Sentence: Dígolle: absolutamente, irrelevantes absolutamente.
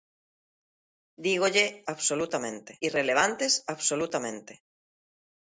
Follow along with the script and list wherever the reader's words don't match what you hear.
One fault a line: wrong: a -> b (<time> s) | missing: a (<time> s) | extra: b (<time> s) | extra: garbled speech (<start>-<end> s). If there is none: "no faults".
no faults